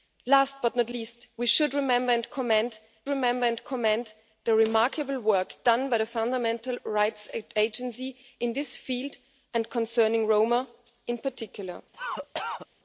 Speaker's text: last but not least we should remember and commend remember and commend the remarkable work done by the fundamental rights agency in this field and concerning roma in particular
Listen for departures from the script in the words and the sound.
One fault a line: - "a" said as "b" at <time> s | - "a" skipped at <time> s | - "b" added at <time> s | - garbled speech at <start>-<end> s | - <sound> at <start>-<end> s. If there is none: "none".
- cough at 11.9-12.7 s